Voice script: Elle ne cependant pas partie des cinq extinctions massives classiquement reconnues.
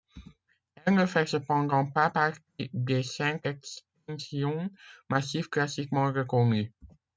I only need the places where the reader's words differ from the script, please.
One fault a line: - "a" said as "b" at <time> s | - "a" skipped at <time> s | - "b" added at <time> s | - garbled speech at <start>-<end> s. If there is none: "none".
- "fait" added at 1.1 s